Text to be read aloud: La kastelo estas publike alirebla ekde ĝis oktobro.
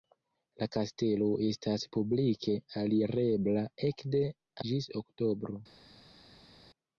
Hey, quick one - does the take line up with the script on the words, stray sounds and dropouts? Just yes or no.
yes